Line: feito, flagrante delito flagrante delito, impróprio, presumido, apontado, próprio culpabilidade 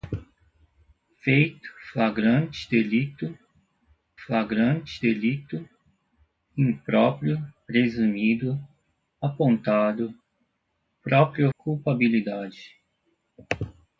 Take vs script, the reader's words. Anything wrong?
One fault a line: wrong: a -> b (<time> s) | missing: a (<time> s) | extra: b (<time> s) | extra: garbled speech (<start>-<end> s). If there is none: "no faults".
no faults